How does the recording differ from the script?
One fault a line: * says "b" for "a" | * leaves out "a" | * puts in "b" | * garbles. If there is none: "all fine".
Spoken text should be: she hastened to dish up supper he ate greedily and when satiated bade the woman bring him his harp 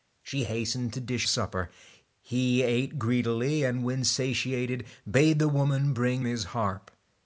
* leaves out "up"
* leaves out "him"